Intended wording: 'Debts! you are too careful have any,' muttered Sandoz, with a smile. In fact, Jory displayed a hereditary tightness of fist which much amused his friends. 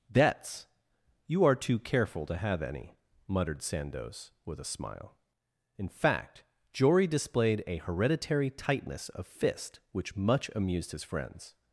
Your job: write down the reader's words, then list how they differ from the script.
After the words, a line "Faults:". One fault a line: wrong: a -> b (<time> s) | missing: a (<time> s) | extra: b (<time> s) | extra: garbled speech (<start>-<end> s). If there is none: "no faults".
'Debts! you are too careful to have any,' muttered Sandoz, with a smile. In fact, Jory displayed a hereditary tightness of fist which much amused his friends.
Faults:
extra: to (2.2 s)